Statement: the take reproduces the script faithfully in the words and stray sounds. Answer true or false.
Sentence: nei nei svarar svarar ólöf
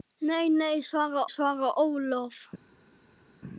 true